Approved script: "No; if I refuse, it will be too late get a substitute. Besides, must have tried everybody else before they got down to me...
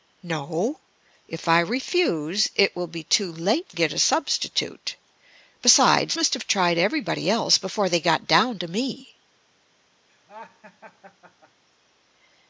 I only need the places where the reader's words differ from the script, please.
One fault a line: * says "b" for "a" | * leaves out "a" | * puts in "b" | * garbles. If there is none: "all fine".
all fine